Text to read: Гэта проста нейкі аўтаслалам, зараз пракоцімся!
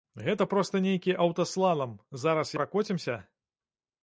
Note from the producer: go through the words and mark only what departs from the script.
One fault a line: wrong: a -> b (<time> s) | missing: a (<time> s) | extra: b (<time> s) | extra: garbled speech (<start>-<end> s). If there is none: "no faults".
no faults